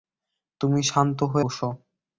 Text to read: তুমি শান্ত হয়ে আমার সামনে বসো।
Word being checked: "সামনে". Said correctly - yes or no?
no